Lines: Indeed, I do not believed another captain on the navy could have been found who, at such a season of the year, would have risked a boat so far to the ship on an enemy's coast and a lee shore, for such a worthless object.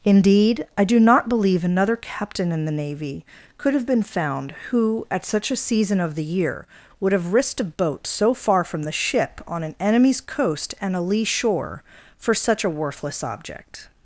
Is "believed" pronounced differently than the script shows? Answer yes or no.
yes